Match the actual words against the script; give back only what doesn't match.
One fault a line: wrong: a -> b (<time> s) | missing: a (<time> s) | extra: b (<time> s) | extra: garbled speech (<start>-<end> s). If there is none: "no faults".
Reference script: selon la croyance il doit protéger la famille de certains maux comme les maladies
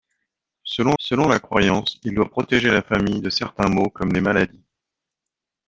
extra: selon (1.0 s)